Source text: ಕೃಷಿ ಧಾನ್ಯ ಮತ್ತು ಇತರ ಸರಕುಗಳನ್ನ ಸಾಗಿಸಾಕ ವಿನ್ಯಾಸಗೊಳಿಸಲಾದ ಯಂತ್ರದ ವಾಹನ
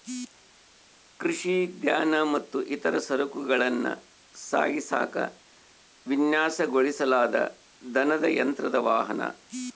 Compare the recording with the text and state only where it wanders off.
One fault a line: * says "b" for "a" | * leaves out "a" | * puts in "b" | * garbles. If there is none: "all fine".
* puts in "ದನದ"